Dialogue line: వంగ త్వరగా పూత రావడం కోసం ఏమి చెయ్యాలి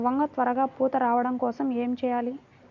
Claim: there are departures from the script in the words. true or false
false